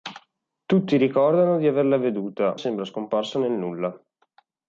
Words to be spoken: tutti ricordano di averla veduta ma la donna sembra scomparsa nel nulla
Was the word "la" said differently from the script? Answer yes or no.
yes